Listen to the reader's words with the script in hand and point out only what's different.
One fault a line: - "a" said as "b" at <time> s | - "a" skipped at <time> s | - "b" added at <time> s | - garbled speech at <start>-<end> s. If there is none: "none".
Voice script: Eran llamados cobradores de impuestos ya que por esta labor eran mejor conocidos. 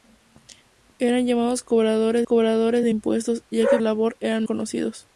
- "cobradores" added at 2.2 s
- "por esta" skipped at 3.8 s
- "mejor" skipped at 4.5 s